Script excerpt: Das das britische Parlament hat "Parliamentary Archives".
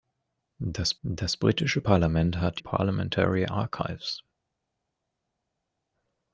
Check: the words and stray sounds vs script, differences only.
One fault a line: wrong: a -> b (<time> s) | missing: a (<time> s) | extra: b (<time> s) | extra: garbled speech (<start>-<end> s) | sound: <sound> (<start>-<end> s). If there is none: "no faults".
no faults